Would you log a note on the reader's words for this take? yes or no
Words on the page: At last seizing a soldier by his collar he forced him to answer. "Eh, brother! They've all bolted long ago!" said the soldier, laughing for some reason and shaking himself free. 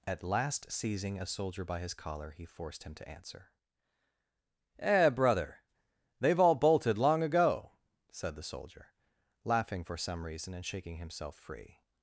no